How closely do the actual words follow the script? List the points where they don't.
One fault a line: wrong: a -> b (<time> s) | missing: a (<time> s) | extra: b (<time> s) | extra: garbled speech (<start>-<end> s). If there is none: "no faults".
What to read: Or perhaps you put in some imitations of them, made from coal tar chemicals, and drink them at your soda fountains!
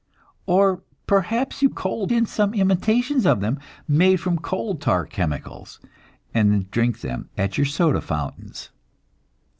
wrong: put -> coal (1.7 s)